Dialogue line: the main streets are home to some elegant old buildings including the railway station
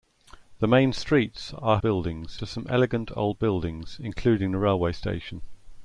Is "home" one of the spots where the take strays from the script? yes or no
yes